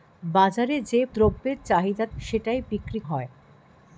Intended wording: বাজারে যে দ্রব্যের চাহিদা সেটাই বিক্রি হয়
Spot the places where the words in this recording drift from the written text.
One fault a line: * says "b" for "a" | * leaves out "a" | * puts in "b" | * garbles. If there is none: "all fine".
all fine